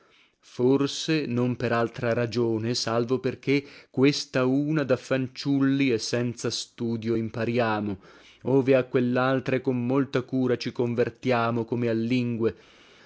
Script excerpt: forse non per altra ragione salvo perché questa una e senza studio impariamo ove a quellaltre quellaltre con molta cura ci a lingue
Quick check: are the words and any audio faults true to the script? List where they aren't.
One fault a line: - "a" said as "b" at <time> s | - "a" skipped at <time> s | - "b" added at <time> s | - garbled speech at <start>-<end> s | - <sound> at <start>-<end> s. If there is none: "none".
- "da fanciulli" added at 4.8 s
- "quellaltre" skipped at 9.6 s
- "convertiamo come" added at 10.7 s